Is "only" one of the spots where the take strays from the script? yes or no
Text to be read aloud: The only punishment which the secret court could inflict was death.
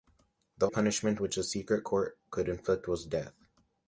yes